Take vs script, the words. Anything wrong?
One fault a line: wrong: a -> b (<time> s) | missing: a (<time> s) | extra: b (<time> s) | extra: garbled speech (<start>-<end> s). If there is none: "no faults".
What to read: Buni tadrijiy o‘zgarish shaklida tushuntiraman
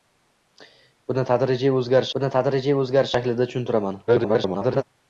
extra: buni tadrijiy o‘zgarish (2.2 s)
extra: garbled speech (4.1-4.8 s)